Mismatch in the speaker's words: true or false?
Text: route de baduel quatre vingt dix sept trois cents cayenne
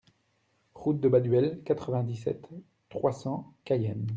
false